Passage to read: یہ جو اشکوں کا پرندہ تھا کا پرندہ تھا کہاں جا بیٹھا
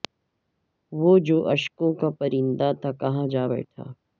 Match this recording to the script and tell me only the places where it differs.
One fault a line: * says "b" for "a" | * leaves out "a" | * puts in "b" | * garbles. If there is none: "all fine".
* says "وہ" for "یہ"
* leaves out "کا پرندہ تھا"